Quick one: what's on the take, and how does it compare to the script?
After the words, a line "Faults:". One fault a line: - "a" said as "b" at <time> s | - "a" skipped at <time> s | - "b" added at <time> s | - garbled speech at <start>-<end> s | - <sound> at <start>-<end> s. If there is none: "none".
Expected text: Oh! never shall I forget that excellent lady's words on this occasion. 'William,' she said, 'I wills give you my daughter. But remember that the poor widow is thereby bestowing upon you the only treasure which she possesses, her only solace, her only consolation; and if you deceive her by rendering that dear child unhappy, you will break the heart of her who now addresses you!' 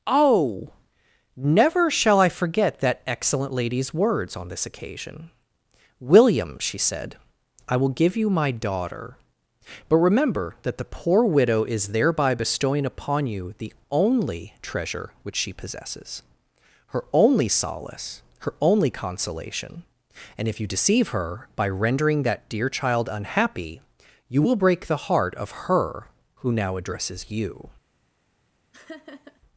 Oh! never shall I forget that excellent lady's words on this occasion. 'William,' she said, 'I will give you my daughter. But remember that the poor widow is thereby bestowing upon you the only treasure which she possesses, her only solace, her only consolation; and if you deceive her by rendering that dear child unhappy, you will break the heart of her who now addresses you!'
Faults:
- "wills" said as "will" at 7.8 s
- laugh at 28.7-29.4 s